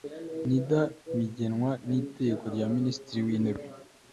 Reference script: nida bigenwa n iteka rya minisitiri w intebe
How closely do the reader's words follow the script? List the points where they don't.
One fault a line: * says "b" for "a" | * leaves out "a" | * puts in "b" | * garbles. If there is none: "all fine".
all fine